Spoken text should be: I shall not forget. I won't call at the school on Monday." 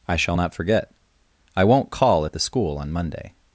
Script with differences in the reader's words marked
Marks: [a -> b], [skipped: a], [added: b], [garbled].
I shall not forget. I won't call at the school on Monday."